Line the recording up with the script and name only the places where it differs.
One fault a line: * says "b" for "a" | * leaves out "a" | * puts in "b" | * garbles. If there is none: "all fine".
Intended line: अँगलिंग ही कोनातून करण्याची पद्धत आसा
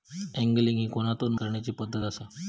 all fine